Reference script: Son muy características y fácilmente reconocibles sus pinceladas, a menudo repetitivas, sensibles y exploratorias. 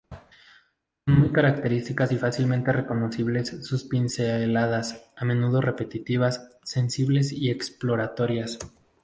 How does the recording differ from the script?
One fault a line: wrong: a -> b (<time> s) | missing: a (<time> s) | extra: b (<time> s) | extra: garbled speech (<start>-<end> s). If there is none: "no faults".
no faults